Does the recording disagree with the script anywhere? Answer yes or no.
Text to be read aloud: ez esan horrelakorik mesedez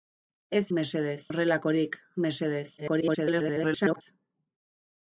yes